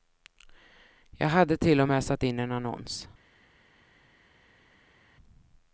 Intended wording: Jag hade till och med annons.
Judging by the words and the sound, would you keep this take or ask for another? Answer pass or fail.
fail